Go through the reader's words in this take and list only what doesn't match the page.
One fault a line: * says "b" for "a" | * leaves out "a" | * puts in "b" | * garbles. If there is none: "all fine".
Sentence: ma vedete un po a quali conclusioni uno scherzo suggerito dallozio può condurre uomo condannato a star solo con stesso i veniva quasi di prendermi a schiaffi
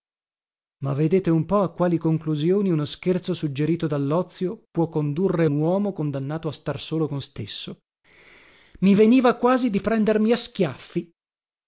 all fine